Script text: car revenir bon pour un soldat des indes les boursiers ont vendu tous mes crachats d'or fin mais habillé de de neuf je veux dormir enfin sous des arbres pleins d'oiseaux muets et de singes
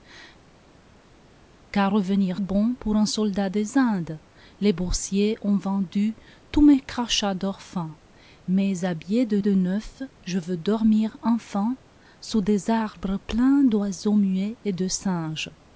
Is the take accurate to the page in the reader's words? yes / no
yes